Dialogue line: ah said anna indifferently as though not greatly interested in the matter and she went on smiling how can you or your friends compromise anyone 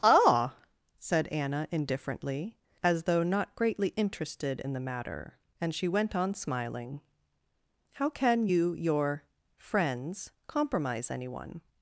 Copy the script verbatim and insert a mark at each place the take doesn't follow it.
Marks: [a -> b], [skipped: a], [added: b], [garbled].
ah said anna indifferently as though not greatly interested in the matter and she went on smiling how can you [skipped: or] your friends compromise anyone